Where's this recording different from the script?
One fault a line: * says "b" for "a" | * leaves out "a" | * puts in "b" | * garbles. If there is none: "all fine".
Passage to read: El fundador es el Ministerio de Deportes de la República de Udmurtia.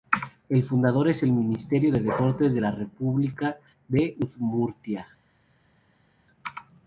all fine